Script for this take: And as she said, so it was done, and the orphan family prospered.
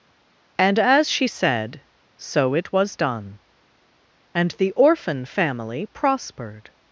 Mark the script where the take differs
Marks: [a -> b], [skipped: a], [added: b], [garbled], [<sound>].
And as she said, so it was done, and the orphan family prospered.